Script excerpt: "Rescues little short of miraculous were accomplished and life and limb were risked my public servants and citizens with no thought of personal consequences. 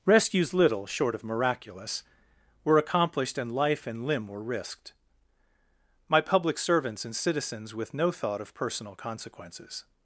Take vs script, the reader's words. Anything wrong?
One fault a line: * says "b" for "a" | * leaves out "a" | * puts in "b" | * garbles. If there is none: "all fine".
all fine